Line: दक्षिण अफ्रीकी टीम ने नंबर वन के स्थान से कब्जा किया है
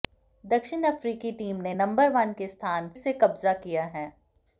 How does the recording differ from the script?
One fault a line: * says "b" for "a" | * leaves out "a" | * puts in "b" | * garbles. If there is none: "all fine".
all fine